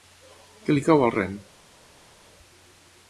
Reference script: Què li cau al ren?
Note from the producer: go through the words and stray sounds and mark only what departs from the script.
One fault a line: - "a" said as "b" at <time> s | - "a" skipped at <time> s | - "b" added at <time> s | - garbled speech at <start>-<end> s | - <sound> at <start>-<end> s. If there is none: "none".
none